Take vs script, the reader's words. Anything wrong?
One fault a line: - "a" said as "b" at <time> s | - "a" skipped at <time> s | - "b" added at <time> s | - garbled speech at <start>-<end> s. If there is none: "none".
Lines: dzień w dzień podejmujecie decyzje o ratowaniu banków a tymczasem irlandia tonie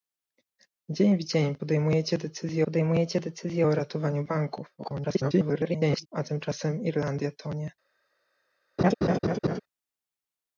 - "podejmujecie decyzje" added at 2.6 s
- garbled speech at 4.8-6.1 s